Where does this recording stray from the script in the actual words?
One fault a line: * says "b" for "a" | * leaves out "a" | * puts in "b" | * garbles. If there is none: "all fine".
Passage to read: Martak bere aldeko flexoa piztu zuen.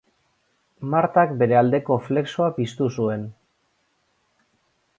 all fine